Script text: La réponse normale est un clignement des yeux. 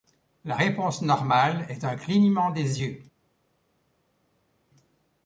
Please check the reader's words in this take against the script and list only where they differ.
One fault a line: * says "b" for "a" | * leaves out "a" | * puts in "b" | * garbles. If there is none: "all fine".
all fine